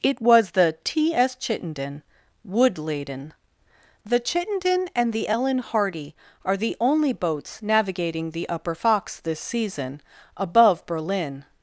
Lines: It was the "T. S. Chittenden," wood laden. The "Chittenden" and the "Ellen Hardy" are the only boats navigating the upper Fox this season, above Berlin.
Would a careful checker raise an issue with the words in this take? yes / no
no